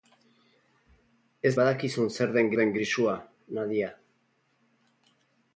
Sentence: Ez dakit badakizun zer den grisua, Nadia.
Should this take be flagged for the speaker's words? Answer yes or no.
yes